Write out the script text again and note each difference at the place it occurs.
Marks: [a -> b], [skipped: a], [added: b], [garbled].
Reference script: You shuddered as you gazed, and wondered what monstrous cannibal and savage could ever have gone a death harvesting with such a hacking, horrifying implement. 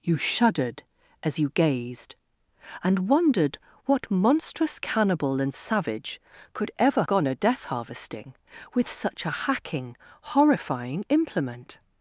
You shuddered as you gazed, and wondered what monstrous cannibal and savage could ever [skipped: have] gone a death harvesting with such a hacking, horrifying implement.